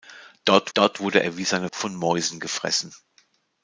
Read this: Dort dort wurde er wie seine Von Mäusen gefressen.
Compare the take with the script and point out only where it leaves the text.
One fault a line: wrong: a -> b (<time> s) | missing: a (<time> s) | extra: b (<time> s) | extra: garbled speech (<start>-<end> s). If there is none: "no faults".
no faults